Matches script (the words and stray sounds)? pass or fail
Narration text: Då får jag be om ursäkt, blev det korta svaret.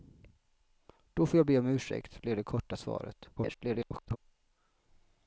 fail